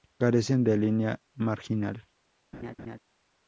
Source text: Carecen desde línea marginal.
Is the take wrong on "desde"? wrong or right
wrong